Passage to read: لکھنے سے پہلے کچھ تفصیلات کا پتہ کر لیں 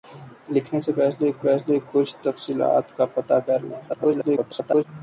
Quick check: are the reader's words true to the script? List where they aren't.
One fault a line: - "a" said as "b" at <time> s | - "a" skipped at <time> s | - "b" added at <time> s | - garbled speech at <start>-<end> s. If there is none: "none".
- "پہلے" added at 1.4 s
- garbled speech at 3.9-4.8 s